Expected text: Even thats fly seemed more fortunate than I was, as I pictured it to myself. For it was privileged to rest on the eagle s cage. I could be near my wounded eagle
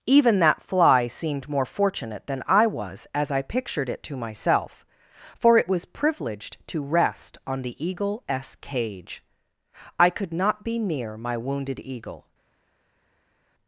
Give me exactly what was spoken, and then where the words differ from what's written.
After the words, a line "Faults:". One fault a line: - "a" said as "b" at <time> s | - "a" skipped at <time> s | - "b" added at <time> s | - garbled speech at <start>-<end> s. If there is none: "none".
Even that fly seemed more fortunate than I was, as I pictured it to myself. For it was privileged to rest on the eagle s cage. I could not be near my wounded eagle
Faults:
- "thats" said as "that" at 0.4 s
- "not" added at 10.3 s